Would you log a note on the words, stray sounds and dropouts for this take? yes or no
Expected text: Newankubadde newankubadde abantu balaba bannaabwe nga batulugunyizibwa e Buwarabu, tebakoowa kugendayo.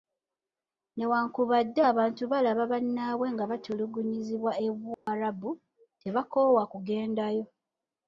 yes